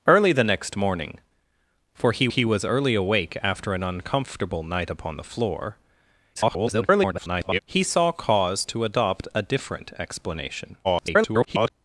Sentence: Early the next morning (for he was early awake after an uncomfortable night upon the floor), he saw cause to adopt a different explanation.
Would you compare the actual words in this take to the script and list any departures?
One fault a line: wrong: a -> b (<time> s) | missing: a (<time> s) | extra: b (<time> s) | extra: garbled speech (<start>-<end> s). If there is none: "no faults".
extra: he (2.3 s)
extra: garbled speech (6.3-7.6 s)
extra: garbled speech (10.8-11.7 s)